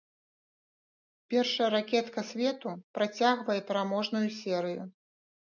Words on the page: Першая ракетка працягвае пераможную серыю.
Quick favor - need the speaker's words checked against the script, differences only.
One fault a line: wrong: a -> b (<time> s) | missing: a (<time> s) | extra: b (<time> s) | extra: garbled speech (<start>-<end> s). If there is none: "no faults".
extra: свету (2.3 s)